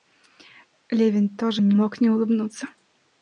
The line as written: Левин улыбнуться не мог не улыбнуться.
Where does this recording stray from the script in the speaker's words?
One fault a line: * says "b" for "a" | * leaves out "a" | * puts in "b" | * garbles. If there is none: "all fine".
* says "тоже" for "улыбнуться"